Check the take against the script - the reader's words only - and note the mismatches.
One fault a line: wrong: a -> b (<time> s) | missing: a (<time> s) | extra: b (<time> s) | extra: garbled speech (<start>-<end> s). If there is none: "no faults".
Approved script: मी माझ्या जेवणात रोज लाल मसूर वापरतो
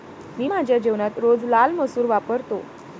no faults